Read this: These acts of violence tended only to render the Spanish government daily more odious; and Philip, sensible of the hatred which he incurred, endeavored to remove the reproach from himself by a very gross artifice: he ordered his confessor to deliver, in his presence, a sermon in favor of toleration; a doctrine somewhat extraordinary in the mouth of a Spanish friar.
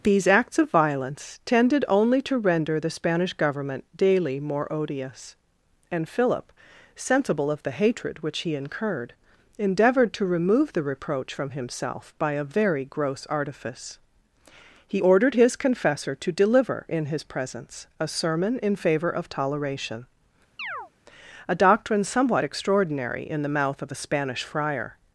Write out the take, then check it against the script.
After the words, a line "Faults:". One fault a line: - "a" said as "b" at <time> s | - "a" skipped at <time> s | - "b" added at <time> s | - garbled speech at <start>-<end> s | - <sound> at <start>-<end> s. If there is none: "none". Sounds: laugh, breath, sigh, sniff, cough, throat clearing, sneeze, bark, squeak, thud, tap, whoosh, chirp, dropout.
These acts of violence tended only to render the Spanish government daily more odious; and Philip, sensible of the hatred which he incurred, endeavored to remove the reproach from himself by a very gross artifice: he ordered his confessor to deliver, in his presence, a sermon in favor of toleration; a doctrine somewhat extraordinary in the mouth of a Spanish friar.
Faults:
- chirp at 20.6-20.9 s